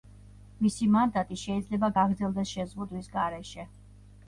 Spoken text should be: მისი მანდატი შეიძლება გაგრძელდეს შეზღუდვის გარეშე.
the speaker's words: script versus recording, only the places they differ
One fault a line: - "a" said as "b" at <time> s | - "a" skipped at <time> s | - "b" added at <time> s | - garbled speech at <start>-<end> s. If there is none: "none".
none